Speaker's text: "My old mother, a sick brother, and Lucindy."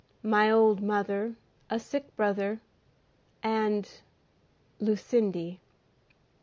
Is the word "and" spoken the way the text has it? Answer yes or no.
yes